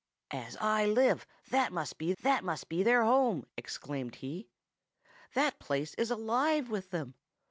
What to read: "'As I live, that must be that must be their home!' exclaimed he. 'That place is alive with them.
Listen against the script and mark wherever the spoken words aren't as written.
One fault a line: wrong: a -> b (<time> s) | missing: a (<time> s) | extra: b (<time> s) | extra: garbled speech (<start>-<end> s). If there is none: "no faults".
no faults